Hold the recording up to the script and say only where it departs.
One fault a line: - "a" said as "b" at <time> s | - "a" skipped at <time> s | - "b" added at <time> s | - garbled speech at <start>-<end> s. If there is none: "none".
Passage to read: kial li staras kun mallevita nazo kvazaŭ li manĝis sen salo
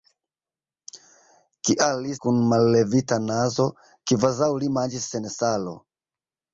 - "staras" skipped at 2.1 s